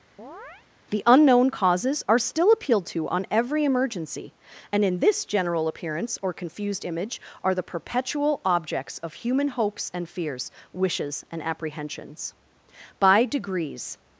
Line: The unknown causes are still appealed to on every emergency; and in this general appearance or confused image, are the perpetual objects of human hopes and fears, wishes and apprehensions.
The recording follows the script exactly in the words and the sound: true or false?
false